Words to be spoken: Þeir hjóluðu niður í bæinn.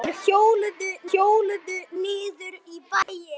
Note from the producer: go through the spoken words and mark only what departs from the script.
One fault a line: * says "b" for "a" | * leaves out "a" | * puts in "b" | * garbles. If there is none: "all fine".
* puts in "hjóluðu"